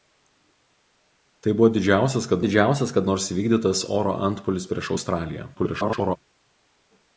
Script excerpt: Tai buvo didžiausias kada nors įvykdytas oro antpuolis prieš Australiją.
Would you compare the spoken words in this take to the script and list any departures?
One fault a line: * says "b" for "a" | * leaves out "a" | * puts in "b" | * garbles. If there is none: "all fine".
* puts in "didžiausias kada"
* garbles